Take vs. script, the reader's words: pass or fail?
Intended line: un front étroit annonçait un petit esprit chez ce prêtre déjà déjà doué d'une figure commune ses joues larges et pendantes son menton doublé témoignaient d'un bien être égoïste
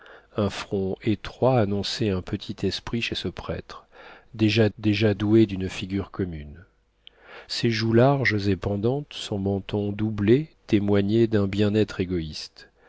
pass